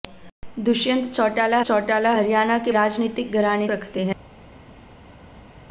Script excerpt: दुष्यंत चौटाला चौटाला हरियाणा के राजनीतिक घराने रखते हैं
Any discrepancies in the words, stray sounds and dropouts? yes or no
no